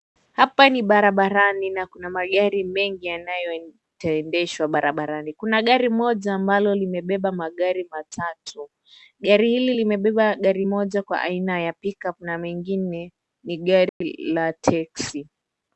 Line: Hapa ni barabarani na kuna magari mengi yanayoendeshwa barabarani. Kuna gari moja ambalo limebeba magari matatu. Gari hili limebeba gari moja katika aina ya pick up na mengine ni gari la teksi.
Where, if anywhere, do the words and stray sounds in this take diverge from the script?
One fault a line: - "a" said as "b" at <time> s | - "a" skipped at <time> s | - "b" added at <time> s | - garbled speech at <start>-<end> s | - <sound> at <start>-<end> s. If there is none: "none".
- "katika" said as "kwa" at 11.0 s
- dropout at 13.9-14.0 s